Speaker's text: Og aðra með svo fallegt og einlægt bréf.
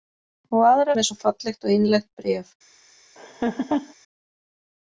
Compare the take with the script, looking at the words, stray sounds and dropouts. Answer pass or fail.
fail